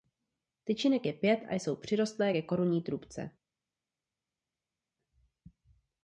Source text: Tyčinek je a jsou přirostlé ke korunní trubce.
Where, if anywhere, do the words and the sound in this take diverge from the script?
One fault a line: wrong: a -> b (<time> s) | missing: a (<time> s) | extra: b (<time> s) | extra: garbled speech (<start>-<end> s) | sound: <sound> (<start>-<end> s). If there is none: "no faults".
extra: pět (1.1 s)